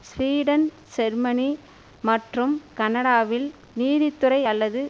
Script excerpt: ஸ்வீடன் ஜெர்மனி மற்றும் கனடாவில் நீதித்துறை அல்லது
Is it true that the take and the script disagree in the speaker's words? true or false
false